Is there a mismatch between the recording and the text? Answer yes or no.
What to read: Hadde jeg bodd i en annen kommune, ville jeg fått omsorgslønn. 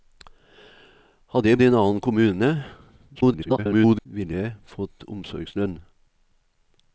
yes